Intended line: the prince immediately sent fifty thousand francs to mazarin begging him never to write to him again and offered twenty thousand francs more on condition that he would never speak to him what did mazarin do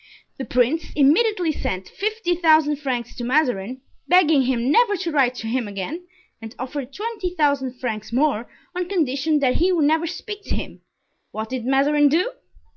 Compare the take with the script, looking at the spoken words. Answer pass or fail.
pass